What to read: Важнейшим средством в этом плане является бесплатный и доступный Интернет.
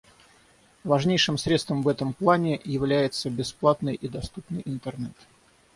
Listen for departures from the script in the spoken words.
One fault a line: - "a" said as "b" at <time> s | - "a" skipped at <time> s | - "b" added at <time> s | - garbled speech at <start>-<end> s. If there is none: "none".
none